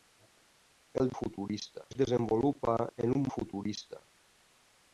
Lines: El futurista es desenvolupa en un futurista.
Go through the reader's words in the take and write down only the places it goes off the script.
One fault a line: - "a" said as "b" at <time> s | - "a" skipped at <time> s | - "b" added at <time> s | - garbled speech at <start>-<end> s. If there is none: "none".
none